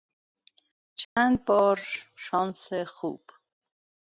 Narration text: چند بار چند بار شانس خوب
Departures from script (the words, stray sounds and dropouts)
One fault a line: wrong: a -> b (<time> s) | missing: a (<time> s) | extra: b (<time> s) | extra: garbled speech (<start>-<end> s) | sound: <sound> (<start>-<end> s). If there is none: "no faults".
sound: dropout (1.0-1.2 s)
missing: چند بار (1.8 s)